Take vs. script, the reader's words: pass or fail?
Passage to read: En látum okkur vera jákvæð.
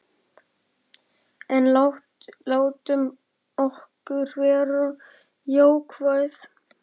pass